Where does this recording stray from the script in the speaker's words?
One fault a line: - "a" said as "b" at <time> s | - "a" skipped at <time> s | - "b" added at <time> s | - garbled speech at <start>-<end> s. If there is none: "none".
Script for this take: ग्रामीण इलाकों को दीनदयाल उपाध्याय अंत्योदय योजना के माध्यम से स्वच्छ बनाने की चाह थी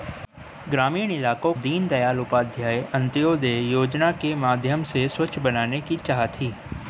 - "को" skipped at 1.5 s